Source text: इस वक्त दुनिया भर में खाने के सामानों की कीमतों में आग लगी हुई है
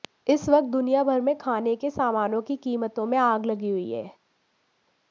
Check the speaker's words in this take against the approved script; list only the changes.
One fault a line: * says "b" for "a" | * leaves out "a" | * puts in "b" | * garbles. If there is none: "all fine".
all fine